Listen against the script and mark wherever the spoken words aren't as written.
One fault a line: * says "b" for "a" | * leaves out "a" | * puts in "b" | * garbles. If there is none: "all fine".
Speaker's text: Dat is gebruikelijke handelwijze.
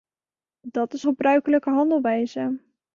all fine